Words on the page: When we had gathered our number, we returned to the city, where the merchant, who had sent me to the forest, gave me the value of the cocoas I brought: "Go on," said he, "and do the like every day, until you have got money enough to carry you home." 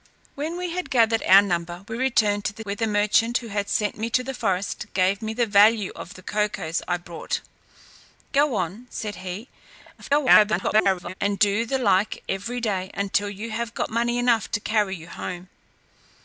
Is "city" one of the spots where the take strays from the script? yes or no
yes